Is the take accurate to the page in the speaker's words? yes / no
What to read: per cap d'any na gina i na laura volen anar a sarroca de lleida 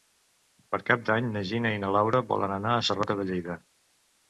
yes